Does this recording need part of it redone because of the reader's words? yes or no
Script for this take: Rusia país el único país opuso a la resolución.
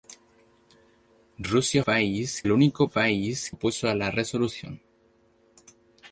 no